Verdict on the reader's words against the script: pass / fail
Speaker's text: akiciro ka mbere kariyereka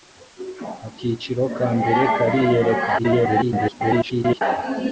fail